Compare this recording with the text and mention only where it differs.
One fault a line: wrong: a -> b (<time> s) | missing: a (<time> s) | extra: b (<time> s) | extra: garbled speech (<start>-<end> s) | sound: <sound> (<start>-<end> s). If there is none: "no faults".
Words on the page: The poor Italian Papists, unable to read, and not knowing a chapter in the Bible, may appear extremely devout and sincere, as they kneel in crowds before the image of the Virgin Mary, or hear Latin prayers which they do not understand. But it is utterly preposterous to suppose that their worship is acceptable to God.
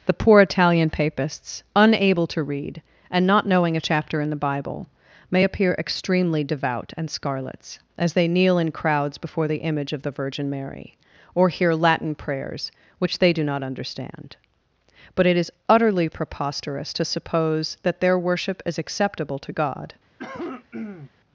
wrong: sincere -> scarlets (7.1 s)
sound: cough (20.2-21.1 s)